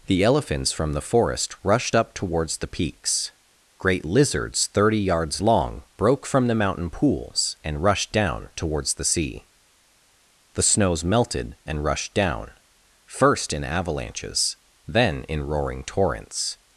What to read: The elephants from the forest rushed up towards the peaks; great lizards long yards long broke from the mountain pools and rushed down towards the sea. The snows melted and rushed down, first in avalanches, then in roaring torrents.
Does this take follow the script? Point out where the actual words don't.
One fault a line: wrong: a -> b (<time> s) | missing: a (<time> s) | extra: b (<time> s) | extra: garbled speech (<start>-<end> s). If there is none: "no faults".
wrong: long -> thirty (4.7 s)